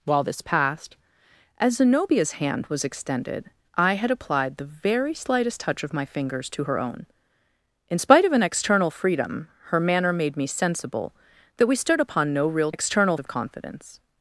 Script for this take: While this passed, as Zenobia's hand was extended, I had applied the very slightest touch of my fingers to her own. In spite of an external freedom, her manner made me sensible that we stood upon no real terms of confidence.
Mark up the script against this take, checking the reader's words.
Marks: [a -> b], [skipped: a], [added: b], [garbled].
While this passed, as Zenobia's hand was extended, I had applied the very slightest touch of my fingers to her own. In spite of an external freedom, her manner made me sensible that we stood upon no real [terms -> external] of confidence.